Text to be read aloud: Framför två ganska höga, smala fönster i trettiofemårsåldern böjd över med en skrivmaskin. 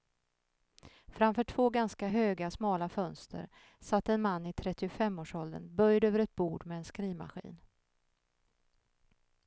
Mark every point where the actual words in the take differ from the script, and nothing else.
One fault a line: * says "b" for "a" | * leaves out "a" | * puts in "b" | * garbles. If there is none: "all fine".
* puts in "satt en man"
* puts in "ett bord"